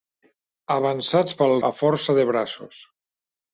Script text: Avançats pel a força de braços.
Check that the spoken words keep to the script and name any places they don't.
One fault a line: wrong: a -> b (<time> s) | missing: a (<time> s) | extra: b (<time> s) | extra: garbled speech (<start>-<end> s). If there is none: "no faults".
no faults